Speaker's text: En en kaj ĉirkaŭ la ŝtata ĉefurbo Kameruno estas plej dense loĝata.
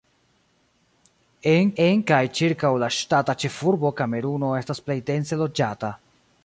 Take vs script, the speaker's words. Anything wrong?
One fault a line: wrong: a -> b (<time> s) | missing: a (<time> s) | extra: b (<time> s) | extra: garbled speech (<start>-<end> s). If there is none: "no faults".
no faults